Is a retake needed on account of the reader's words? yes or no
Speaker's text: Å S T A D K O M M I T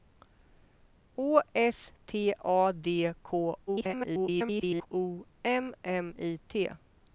yes